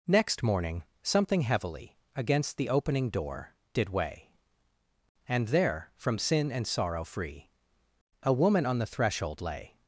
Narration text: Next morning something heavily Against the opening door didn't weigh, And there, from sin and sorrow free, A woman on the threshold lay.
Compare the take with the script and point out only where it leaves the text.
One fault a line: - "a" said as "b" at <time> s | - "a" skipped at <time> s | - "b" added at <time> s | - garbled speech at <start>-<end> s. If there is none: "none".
- "didn't" said as "did" at 3.7 s